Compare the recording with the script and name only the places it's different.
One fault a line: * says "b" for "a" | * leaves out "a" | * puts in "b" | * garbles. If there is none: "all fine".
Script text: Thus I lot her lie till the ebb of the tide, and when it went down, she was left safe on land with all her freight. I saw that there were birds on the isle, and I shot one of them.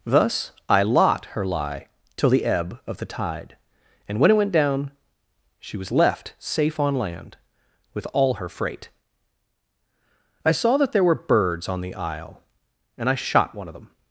all fine